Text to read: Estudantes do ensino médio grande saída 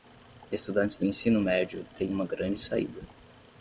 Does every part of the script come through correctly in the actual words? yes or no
no